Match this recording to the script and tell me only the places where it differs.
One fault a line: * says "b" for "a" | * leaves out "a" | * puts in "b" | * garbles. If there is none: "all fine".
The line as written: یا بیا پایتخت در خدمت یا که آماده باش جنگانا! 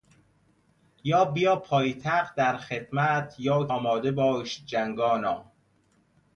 * leaves out "که"